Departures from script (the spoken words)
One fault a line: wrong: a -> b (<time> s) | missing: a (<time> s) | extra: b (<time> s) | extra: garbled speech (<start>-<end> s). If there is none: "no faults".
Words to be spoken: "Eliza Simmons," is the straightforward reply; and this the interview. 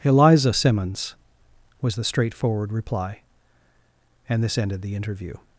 wrong: is -> was (1.8 s)
extra: ended (4.6 s)